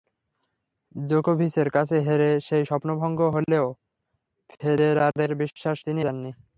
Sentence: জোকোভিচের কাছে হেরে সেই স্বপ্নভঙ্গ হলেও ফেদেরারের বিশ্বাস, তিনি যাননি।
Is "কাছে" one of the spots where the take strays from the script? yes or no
no